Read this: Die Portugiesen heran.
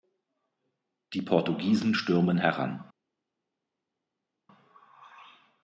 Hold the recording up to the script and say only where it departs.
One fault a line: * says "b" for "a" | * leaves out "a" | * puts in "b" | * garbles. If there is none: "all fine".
* puts in "stürmen"